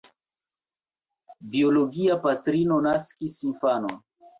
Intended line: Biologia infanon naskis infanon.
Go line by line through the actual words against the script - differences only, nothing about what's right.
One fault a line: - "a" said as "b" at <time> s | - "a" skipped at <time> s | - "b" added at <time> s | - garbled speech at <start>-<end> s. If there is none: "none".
- "infanon" said as "patrino" at 2.3 s